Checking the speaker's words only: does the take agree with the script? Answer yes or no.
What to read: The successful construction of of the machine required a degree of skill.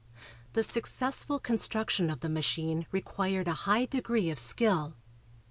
no